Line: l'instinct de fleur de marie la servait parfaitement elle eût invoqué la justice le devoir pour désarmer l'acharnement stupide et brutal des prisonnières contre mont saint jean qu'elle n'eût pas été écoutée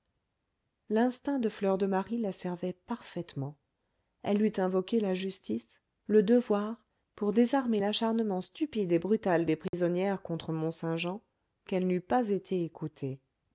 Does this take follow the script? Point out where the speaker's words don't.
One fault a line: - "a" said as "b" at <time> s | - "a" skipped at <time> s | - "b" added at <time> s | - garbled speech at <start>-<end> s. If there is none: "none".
none